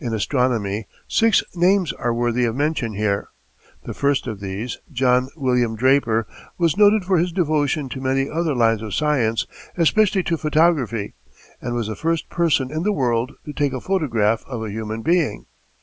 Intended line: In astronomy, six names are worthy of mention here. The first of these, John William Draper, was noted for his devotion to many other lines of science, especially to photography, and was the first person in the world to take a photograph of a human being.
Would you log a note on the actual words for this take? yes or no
no